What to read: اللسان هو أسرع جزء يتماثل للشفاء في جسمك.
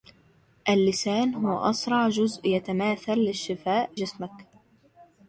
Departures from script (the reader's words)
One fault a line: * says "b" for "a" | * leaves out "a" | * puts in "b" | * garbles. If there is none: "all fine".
* leaves out "في"